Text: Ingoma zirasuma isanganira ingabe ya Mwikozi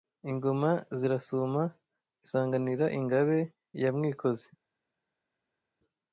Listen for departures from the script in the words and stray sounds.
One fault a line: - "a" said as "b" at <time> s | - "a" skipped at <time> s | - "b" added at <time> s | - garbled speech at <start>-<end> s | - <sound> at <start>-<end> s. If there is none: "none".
none